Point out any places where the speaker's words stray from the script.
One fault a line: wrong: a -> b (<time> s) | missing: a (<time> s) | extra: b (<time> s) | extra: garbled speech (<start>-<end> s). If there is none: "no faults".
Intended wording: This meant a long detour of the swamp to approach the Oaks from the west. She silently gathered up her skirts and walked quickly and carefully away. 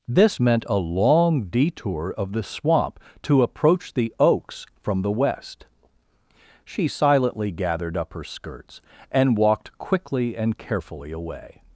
no faults